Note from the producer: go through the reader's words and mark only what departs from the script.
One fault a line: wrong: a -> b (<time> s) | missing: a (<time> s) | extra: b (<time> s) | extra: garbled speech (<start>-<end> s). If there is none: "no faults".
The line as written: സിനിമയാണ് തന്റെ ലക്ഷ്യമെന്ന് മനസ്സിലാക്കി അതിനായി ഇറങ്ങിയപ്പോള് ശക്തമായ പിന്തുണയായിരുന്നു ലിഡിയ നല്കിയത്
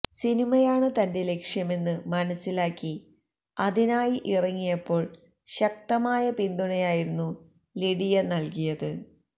no faults